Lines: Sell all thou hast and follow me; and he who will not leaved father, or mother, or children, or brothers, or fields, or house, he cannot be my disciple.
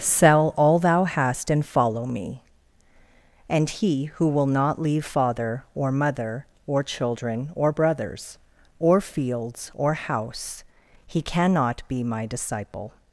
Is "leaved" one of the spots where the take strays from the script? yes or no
yes